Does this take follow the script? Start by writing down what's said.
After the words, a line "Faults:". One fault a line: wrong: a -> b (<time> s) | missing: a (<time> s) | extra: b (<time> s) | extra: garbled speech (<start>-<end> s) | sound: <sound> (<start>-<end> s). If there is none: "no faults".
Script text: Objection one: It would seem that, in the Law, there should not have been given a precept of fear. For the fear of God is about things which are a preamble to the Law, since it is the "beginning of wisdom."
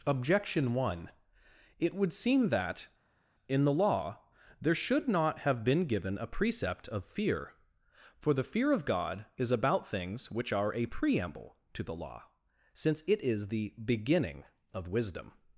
Objection one: It would seem that, in the Law, there should not have been given a precept of fear. For the fear of God is about things which are a preamble to the Law, since it is the "beginning of wisdom."
Faults:
no faults